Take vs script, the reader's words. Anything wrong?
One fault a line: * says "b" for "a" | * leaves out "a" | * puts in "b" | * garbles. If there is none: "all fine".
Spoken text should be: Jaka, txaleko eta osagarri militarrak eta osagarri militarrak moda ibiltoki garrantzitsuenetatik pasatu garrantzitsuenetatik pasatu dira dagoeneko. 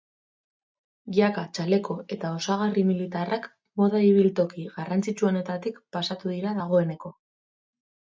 * leaves out "eta osagarri militarrak"
* leaves out "garrantzitsuenetatik pasatu"